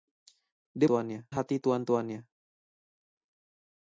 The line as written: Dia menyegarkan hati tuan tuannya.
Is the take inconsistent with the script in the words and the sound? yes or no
yes